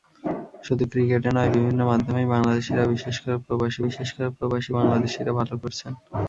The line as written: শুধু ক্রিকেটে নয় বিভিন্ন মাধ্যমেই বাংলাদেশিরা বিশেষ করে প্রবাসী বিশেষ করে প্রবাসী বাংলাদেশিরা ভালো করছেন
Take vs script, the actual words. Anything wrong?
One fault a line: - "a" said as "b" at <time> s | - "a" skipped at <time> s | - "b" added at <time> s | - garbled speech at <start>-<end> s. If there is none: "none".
none